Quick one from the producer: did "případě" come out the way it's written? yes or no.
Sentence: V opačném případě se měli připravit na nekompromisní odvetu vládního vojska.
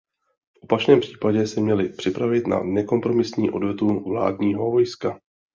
yes